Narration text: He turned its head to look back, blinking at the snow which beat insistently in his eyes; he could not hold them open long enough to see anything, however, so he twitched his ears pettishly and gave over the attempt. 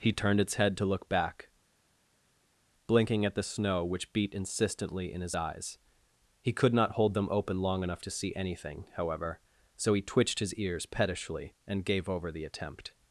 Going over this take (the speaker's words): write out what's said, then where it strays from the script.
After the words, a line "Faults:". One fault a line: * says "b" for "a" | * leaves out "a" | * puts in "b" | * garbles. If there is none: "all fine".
He turned its head to look back, blinking at the snow which beat insistently in his eyes; he could not hold them open long enough to see anything, however, so he twitched his ears pettishly and gave over the attempt.
Faults:
all fine